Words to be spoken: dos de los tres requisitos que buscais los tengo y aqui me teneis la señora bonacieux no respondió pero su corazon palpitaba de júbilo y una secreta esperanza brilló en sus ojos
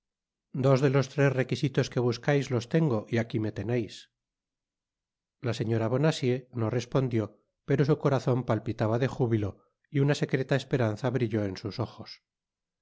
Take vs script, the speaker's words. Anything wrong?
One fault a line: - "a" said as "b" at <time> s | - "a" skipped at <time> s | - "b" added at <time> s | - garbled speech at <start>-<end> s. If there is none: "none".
none